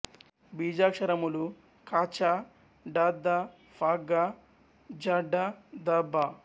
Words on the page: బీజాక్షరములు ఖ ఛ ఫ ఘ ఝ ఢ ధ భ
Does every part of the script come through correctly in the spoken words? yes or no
no